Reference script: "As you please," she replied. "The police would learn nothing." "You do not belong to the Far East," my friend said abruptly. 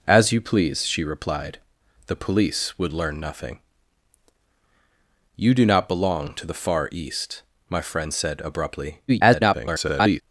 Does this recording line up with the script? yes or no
no